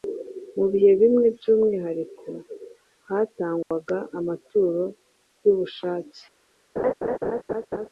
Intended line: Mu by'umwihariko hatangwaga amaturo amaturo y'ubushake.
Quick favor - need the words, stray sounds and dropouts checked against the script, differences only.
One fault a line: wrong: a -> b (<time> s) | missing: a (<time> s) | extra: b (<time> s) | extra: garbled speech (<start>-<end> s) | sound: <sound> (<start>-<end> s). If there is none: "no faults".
extra: bihe bimwe (0.7 s)
sound: dropout (3.6-3.7 s)
missing: amaturo (4.8 s)
sound: laugh (6.8-7.9 s)